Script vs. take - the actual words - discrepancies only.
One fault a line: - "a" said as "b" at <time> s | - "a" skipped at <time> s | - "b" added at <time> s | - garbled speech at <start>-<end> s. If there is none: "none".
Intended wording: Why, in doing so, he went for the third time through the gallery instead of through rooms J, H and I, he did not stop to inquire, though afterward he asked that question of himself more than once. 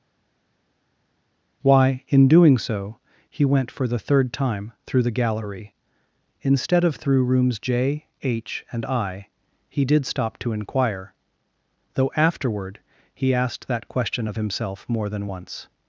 - "not" skipped at 10.0 s